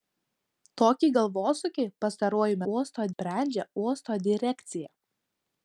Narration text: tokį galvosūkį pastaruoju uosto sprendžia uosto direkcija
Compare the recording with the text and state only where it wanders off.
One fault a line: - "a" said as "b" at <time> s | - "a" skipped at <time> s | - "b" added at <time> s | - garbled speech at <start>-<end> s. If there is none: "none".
none